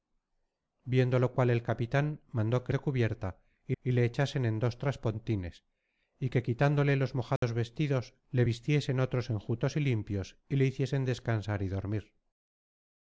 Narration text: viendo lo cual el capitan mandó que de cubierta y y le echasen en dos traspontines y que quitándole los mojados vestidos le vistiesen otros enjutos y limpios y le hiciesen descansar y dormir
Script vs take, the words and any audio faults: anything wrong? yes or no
yes